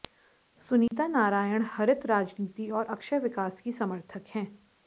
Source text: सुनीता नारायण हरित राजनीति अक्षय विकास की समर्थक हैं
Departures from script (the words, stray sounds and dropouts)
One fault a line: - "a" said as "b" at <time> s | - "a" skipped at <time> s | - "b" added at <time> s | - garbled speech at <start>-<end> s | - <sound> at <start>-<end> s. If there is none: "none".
- dropout at 0.9-0.9 s
- "और" added at 2.7 s